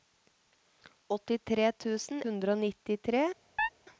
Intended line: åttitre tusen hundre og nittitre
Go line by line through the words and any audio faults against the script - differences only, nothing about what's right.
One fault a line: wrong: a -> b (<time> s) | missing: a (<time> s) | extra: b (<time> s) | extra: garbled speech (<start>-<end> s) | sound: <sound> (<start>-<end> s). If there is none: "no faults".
sound: chirp (3.6-3.7 s)